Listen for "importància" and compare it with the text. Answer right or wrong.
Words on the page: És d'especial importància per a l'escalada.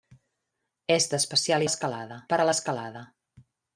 wrong